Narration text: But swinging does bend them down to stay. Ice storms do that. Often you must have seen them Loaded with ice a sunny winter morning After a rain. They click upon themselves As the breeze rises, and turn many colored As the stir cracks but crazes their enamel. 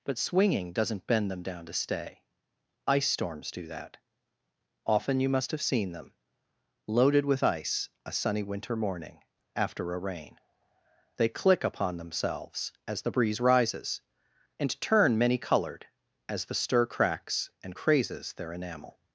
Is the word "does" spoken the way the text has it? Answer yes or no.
no